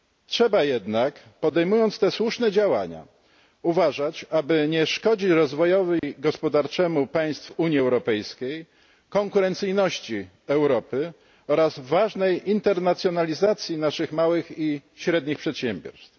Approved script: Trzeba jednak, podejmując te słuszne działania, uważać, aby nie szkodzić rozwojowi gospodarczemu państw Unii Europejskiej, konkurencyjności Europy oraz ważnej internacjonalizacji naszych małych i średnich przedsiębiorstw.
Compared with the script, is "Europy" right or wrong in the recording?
right